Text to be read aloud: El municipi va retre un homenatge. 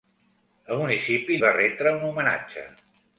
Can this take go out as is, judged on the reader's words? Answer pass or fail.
pass